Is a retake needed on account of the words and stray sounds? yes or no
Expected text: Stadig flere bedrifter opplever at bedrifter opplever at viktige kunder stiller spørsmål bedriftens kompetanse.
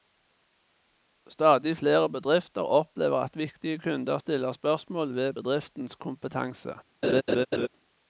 yes